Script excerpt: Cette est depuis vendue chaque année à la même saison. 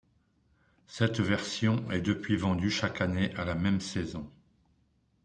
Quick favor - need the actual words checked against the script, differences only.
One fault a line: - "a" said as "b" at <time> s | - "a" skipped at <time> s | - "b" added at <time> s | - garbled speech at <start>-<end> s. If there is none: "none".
- "version" added at 1.2 s